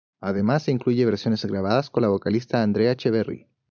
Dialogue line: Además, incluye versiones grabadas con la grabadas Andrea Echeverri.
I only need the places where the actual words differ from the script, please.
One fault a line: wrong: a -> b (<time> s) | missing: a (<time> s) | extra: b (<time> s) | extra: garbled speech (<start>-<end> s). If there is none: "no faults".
wrong: grabadas -> vocalista (2.1 s)